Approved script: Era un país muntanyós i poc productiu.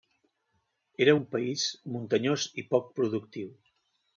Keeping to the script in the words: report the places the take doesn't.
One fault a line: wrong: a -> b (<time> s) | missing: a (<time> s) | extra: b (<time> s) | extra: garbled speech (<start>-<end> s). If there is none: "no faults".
no faults